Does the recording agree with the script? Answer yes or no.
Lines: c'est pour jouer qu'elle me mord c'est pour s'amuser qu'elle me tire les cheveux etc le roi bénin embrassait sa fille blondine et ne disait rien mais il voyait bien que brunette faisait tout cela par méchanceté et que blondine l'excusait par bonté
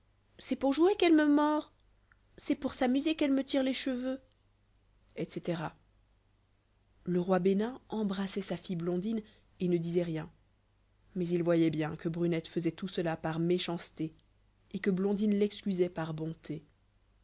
yes